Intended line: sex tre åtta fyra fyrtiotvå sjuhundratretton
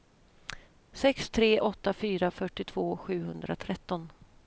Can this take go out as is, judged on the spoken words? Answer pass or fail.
pass